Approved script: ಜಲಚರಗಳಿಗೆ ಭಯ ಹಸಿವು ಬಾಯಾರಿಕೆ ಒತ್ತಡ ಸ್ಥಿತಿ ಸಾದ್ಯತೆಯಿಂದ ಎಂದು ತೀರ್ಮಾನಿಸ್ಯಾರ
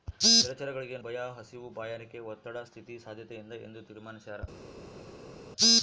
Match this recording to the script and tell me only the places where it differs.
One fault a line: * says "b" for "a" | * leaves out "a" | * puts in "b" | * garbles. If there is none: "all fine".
all fine